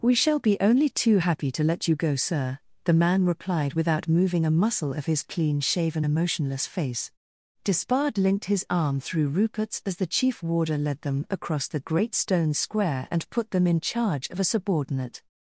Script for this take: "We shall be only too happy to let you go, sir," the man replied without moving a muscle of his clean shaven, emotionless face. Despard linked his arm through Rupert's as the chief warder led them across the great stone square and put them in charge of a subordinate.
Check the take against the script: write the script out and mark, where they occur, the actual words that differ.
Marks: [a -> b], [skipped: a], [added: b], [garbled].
"We shall be only too happy to let you go, sir," the man replied without moving a muscle of his clean shaven, emotionless face. Despard linked his arm through Rupert's as the chief warder led them across the great stone square and put them in charge of a subordinate.